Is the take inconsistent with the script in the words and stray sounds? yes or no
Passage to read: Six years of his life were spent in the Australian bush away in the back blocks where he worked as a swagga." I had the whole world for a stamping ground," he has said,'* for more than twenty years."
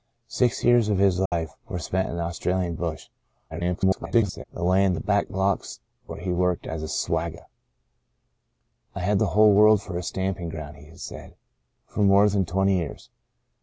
yes